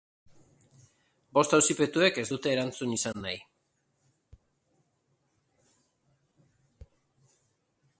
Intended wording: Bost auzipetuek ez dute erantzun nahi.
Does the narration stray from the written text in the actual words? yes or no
yes